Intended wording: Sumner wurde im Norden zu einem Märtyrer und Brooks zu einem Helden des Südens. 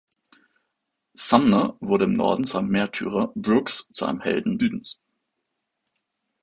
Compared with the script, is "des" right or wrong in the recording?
wrong